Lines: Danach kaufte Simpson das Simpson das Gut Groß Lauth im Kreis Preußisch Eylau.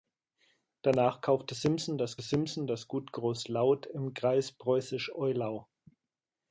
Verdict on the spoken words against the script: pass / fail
pass